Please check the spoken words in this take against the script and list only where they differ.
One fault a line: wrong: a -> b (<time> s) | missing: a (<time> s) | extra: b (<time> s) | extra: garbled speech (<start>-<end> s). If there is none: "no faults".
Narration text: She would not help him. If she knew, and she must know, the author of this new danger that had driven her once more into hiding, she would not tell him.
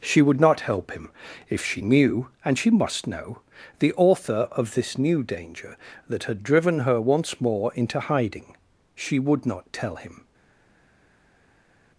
no faults